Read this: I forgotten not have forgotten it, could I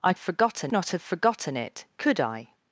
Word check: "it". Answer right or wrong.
right